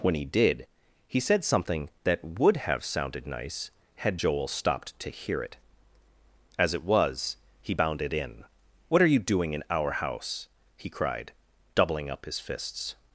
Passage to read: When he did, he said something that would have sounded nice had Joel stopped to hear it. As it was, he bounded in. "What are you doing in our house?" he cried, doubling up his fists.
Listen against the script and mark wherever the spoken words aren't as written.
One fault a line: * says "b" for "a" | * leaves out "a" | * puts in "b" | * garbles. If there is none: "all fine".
all fine